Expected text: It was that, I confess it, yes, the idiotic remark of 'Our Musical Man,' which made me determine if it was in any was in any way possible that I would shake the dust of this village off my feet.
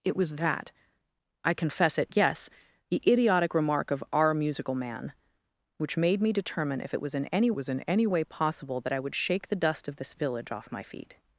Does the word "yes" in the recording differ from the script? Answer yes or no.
no